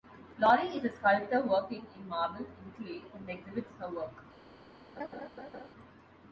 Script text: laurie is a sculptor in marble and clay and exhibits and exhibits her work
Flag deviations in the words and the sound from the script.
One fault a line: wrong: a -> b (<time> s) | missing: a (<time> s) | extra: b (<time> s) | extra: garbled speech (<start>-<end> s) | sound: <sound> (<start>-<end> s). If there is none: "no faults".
extra: working (1.4 s)
missing: and exhibits (3.7 s)
sound: laugh (5.0-5.7 s)